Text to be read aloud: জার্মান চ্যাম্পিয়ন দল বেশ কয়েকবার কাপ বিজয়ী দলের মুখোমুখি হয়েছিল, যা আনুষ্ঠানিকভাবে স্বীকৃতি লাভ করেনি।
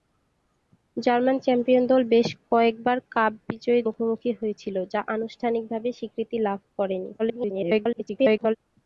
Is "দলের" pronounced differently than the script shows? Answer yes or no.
yes